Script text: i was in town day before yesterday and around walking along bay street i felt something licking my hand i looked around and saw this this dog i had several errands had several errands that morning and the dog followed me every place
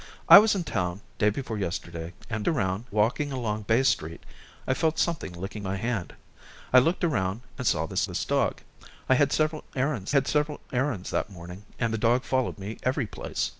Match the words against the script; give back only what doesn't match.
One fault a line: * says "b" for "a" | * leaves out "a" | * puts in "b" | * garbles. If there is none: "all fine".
all fine